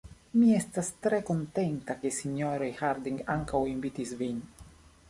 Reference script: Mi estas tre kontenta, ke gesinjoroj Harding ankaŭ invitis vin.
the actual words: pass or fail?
fail